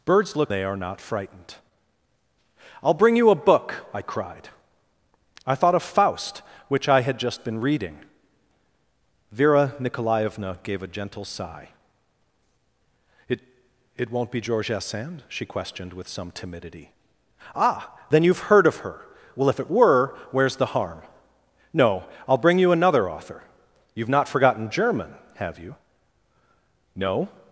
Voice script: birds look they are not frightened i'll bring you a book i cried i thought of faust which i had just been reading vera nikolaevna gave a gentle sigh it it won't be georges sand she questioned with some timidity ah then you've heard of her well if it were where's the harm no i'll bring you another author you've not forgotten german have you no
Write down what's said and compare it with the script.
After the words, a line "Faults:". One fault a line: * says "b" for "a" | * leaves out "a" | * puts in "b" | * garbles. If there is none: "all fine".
birds look they are not frightened i'll bring you a book i cried i thought of faust which i had just been reading vera nikolaevna gave a gentle sigh it it won't be georges sand she questioned with some timidity ah then you've heard of her well if it were where's the harm no i'll bring you another author you've not forgotten german have you no
Faults:
all fine